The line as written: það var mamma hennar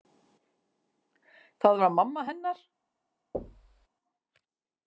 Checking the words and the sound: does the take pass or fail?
fail